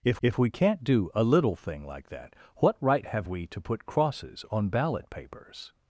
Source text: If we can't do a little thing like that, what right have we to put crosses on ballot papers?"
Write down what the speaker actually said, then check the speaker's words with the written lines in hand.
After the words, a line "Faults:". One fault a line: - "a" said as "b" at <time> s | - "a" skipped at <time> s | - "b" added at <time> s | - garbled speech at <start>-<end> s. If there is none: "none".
If if we can't do a little thing like that, what right have we to put crosses on ballot papers?"
Faults:
- "if" added at 0.2 s